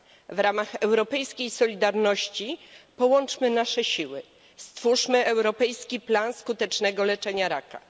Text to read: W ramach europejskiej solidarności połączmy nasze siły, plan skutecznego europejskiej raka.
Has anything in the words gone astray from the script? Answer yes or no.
yes